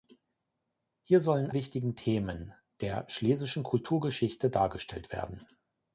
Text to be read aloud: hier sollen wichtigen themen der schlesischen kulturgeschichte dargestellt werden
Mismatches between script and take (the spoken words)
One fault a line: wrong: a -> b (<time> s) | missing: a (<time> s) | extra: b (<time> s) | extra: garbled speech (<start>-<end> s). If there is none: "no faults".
no faults